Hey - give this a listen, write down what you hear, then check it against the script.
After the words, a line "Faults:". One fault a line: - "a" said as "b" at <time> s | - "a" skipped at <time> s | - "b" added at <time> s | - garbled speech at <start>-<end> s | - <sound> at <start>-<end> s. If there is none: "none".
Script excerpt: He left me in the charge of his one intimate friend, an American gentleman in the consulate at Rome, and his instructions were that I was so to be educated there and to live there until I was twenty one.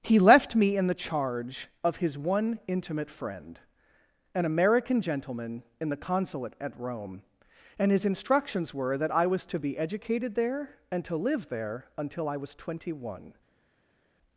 He left me in the charge of his one intimate friend, an American gentleman in the consulate at Rome, and his instructions were that I was to be educated there and to live there until I was twenty one.
Faults:
- "so" skipped at 9.4 s